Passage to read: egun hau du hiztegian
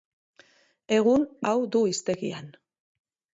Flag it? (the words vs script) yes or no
no